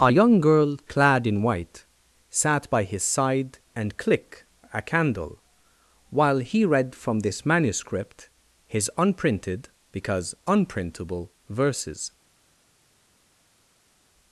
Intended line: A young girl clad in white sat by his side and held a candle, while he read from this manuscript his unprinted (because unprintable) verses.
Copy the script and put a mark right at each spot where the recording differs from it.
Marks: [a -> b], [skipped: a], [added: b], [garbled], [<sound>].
A young girl clad in white sat by his side and [held -> click] a candle, while he read from this manuscript his unprinted (because unprintable) verses.